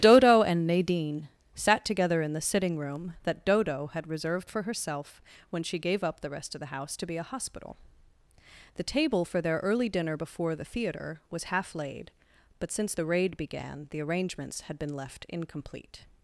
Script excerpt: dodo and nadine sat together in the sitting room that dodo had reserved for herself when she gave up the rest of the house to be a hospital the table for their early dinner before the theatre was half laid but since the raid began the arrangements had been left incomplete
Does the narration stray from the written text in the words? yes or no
no